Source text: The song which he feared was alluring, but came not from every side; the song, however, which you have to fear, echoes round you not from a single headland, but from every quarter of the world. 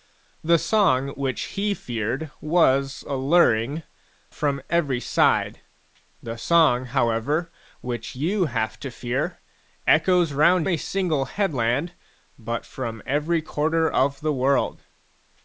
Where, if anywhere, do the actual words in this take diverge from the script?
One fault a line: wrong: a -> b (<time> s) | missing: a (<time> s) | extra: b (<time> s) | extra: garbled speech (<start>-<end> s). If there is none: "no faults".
missing: but came not (3.8 s)
missing: you not from (10.7 s)